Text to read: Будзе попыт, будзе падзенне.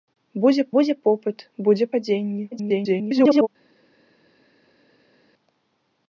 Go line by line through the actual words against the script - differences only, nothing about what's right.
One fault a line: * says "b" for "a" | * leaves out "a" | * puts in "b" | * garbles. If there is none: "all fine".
* puts in "будзе"
* garbles